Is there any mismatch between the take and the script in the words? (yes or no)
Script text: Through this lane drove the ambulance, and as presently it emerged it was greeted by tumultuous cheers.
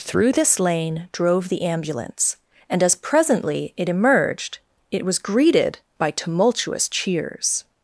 no